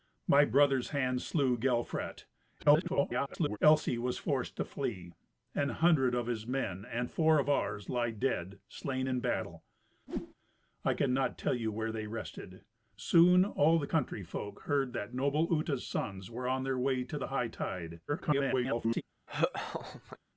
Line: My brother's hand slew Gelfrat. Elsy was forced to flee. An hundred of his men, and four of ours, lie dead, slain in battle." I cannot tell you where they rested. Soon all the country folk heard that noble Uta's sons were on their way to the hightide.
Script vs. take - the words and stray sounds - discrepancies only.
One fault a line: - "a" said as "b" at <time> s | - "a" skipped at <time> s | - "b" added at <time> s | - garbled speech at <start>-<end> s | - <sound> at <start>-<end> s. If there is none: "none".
- garbled speech at 2.6-3.6 s
- whoosh at 10.1-10.3 s
- garbled speech at 18.1-19.0 s
- laugh at 19.3-20.2 s